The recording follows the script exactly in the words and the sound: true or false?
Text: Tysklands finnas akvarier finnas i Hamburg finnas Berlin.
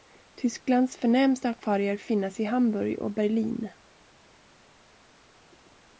false